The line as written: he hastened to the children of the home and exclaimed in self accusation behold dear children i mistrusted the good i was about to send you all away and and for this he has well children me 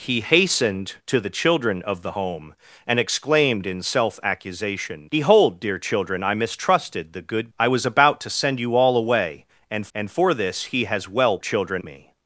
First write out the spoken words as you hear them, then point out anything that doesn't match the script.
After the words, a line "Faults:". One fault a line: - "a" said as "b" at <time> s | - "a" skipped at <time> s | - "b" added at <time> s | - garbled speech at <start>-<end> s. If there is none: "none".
he hastened to the children of the home and exclaimed in self accusation behold dear children i mistrusted the good i was about to send you all away and and for this he has well children me
Faults:
none